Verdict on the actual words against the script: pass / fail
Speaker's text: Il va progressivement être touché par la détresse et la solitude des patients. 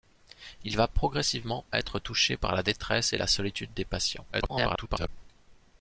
fail